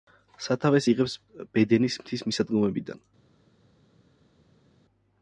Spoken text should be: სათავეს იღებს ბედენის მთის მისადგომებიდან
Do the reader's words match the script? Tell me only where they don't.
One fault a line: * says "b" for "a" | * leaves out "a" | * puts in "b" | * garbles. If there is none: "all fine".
all fine